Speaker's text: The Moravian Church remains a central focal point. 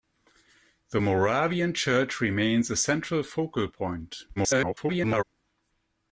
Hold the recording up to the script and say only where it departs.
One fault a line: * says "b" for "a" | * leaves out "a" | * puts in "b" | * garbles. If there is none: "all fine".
* garbles